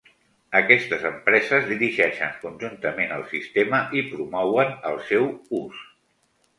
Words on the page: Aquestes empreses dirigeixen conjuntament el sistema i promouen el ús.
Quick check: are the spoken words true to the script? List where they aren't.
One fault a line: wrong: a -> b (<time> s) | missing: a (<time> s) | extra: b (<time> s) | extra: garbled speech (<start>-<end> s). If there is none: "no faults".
extra: seu (5.1 s)